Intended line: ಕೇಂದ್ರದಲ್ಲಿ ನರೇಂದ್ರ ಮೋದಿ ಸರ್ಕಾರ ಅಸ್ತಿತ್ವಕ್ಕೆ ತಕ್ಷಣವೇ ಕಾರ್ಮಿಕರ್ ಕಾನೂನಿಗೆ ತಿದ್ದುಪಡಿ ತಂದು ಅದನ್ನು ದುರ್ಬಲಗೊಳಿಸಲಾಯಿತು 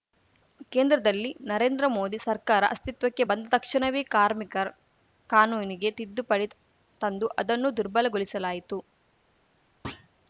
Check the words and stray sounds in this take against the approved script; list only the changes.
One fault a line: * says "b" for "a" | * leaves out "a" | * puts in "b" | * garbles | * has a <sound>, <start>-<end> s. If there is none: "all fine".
* puts in "ಬಂದ"
* has a thud, 9.8-10.1 s